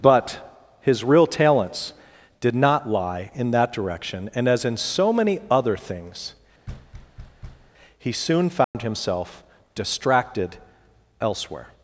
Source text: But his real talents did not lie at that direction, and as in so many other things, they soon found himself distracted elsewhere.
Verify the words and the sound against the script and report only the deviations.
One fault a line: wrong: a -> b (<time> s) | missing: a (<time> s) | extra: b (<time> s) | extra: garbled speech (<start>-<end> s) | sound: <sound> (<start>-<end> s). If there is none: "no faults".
wrong: at -> in (3.4 s)
sound: thud (6.7-7.7 s)
wrong: they -> he (8.0 s)
sound: dropout (8.6-8.7 s)